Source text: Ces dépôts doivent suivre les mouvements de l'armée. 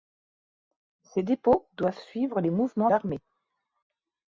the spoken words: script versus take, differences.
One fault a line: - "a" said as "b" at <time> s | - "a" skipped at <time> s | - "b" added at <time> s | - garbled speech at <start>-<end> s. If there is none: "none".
- "de" skipped at 2.9 s